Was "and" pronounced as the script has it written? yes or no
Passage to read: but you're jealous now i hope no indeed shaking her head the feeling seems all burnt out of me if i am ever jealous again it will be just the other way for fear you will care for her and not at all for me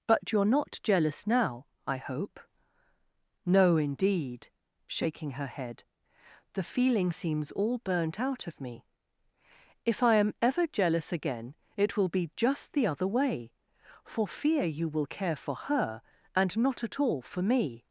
yes